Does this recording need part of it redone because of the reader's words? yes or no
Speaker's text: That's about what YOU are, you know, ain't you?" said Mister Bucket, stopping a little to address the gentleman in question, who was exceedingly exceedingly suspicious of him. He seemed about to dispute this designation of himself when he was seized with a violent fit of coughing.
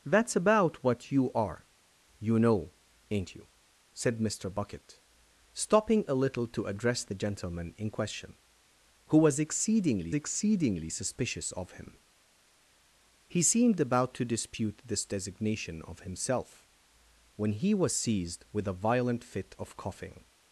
no